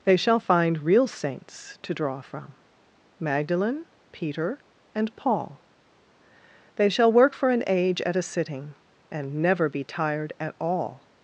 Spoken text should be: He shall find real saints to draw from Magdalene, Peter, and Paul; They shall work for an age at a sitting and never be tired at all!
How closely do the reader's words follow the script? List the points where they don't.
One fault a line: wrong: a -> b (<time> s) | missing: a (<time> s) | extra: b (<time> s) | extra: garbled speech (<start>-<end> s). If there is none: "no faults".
wrong: He -> They (0.0 s)